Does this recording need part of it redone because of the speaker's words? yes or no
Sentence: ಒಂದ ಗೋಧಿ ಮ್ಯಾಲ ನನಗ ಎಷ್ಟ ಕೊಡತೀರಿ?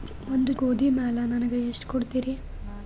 no